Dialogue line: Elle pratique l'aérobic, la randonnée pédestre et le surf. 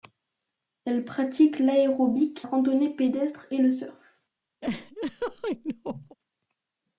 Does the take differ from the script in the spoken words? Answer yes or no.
yes